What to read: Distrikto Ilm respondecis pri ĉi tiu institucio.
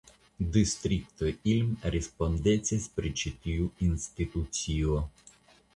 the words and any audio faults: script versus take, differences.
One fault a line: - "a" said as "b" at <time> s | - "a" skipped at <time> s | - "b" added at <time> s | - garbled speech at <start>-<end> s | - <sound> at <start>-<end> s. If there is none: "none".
none